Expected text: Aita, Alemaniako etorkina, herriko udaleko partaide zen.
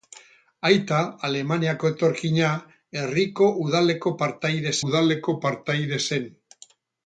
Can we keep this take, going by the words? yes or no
no